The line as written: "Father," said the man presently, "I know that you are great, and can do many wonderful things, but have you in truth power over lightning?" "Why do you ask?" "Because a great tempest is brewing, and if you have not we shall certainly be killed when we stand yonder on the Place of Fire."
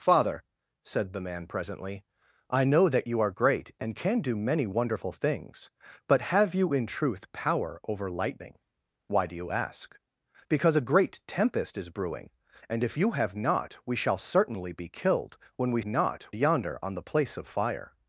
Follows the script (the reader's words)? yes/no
no